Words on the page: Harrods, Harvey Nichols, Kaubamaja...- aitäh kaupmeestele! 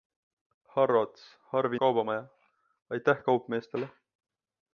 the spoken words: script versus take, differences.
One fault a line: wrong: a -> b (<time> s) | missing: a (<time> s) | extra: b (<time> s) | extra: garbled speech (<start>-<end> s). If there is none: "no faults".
missing: Nichols (1.8 s)